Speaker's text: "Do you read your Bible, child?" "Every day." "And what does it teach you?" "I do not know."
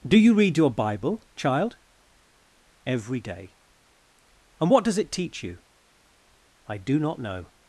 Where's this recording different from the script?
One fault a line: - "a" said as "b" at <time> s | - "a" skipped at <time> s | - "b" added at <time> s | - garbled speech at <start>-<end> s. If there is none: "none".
none